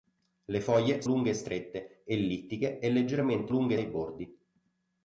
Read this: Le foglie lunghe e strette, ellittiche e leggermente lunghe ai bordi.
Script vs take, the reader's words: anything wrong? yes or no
no